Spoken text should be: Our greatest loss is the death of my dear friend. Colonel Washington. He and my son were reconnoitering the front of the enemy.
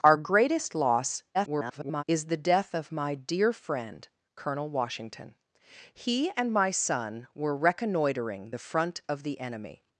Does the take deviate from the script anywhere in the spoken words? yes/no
yes